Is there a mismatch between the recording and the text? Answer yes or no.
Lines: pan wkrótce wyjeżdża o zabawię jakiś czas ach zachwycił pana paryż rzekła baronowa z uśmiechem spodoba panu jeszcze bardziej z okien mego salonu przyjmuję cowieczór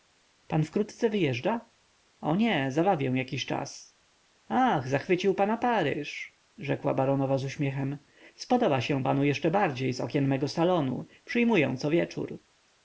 yes